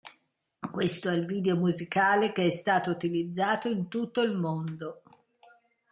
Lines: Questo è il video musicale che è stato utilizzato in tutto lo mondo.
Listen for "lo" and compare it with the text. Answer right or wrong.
wrong